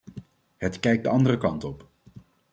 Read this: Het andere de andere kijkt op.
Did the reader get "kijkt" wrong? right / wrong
wrong